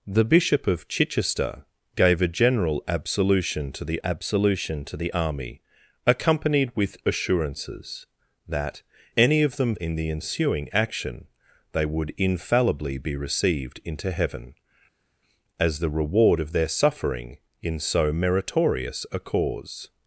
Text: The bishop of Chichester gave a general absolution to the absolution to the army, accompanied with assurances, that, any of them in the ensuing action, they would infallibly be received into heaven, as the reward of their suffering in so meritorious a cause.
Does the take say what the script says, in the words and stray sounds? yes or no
yes